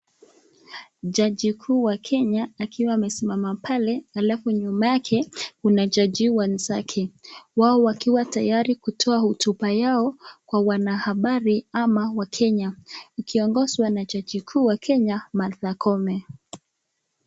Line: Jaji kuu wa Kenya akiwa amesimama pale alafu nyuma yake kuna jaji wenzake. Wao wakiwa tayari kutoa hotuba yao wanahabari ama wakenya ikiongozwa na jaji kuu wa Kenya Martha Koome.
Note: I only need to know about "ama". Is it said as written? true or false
true